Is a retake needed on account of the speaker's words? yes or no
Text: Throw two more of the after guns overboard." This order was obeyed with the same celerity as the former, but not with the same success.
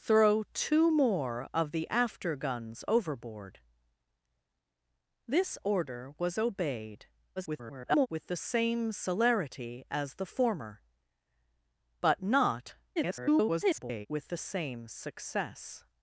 yes